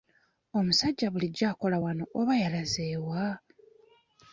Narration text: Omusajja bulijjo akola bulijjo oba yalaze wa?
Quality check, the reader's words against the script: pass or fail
fail